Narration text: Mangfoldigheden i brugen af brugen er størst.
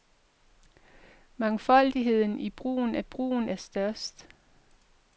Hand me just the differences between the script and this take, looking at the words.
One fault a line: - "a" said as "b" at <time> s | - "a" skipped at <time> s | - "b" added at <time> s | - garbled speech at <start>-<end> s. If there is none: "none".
none